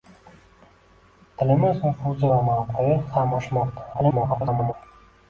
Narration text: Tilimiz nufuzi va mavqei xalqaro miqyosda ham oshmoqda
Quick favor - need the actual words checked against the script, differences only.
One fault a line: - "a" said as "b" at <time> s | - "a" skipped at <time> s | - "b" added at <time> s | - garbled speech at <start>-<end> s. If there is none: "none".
- "xalqaro miqyosda" skipped at 3.0 s
- garbled speech at 3.9-4.7 s